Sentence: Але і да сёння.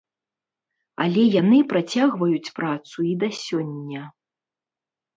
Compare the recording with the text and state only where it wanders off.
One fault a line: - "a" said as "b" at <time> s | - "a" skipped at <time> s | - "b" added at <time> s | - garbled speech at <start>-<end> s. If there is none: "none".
- "яны працягваюць працу" added at 1.4 s